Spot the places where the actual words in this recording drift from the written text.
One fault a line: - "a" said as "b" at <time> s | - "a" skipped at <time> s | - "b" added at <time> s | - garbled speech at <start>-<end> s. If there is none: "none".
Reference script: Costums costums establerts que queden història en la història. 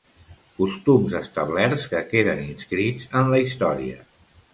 - "costums" skipped at 1.2 s
- "història" said as "inscrits" at 2.5 s